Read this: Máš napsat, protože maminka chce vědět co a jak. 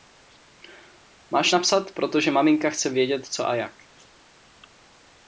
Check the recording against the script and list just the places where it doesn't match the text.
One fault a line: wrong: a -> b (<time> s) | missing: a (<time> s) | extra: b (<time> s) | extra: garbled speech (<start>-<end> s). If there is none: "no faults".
no faults